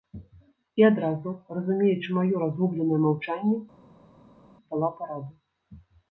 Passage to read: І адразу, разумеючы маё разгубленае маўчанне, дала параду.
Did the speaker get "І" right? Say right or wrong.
right